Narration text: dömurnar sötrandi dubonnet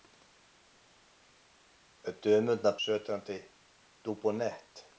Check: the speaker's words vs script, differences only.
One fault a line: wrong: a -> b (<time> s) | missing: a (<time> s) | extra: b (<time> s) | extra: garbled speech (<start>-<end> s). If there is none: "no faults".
no faults